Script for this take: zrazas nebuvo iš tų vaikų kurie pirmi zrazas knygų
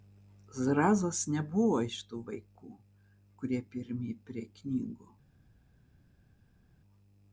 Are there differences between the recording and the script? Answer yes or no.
yes